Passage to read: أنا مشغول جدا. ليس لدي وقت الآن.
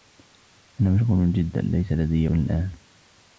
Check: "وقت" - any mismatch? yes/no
yes